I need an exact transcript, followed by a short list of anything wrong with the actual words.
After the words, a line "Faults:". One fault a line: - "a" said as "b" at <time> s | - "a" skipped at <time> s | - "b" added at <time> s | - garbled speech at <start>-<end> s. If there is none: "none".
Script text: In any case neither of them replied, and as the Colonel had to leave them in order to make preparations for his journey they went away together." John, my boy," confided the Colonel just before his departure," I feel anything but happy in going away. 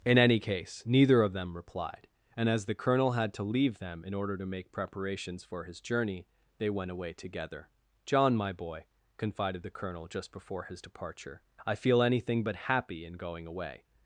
In any case neither of them replied, and as the Colonel had to leave them in order to make preparations for his journey they went away together." John, my boy," confided the Colonel just before his departure," I feel anything but happy in going away.
Faults:
none